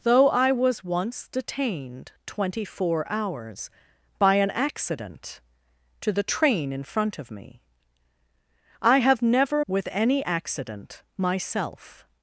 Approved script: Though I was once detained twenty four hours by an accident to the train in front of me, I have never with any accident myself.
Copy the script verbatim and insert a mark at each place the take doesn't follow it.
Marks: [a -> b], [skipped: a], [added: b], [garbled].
Though I was once detained twenty four hours by an accident to the train in front of me, I have never with any accident myself.